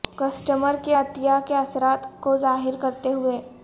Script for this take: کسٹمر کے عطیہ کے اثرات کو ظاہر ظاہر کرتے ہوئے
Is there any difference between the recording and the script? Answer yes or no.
yes